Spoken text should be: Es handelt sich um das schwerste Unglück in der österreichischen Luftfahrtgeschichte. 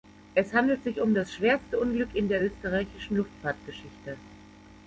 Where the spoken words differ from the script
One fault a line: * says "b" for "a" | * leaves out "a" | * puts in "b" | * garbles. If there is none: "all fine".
all fine